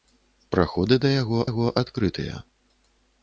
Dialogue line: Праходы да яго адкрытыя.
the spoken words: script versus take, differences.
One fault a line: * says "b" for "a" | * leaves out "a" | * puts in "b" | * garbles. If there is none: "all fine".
* puts in "яго"